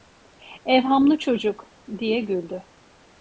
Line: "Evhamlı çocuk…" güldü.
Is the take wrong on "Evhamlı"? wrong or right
right